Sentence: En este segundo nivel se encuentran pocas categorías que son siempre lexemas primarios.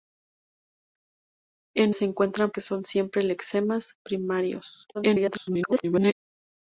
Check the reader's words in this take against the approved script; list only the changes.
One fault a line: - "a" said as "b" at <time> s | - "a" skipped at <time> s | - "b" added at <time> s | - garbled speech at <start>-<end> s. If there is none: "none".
- "este segundo nivel" skipped at 1.9 s
- "pocas categorías" skipped at 2.5 s
- garbled speech at 4.9-6.1 s